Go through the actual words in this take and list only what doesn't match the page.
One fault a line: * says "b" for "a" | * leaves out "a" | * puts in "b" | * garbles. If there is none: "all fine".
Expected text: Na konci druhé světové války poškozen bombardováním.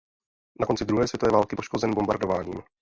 all fine